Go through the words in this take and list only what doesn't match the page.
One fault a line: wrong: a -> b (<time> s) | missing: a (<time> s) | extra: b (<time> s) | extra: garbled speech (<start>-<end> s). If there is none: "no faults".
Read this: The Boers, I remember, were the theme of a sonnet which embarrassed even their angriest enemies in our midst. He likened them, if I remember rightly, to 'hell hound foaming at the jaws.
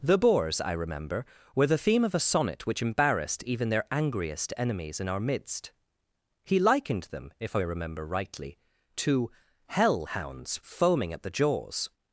wrong: hound -> hounds (10.0 s)